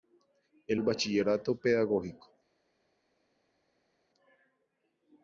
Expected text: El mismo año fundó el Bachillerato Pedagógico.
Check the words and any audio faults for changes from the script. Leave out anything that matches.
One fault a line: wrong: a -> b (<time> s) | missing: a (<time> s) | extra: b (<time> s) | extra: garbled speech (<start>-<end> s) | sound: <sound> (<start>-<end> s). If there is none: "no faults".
missing: mismo año fundó (0.8 s)